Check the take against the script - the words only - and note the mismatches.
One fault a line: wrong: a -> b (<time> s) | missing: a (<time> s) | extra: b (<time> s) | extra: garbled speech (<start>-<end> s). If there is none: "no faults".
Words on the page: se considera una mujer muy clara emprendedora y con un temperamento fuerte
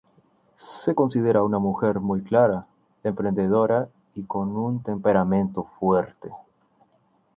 no faults